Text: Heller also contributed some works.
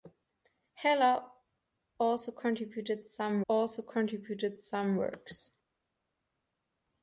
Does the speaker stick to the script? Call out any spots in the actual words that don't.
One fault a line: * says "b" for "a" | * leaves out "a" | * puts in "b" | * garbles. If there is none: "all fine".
* puts in "also contributed some"